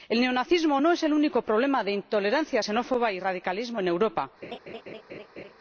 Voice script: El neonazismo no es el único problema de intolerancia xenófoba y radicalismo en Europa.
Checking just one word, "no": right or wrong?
right